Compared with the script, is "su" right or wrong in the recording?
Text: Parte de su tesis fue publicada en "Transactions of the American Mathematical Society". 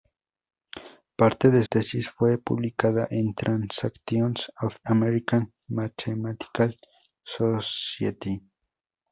wrong